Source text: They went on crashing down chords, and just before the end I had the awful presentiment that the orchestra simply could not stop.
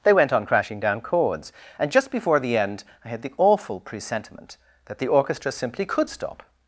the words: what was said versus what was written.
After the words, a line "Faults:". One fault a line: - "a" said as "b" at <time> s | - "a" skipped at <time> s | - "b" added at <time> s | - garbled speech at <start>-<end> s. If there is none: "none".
They went on crashing down chords, and just before the end I had the awful presentiment that the orchestra simply could stop.
Faults:
- "not" skipped at 6.1 s